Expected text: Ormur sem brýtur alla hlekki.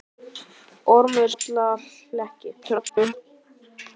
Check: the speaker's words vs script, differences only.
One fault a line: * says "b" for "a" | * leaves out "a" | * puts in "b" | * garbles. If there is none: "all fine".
* leaves out "sem brýtur"
* garbles